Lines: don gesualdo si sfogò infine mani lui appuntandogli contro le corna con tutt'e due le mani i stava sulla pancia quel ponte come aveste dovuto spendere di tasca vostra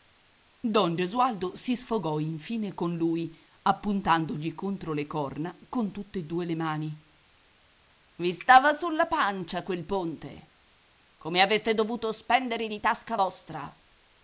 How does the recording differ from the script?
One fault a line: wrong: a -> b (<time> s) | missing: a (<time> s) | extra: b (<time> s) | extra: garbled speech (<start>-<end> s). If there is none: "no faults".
wrong: mani -> con (2.7 s)